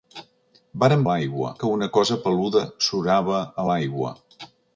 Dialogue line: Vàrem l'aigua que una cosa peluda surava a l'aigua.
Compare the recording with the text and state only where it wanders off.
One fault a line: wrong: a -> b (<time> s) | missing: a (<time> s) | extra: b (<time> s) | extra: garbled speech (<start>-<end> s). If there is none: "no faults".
no faults